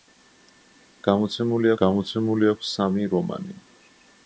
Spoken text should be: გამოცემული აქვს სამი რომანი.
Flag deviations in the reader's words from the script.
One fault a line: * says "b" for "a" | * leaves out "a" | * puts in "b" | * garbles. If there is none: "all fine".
* puts in "გამოცემული"